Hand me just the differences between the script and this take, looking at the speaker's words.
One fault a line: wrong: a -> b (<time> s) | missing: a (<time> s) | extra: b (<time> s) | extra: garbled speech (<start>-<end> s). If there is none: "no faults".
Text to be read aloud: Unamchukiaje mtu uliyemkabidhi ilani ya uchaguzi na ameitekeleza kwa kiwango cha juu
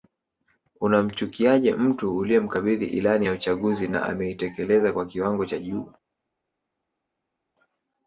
no faults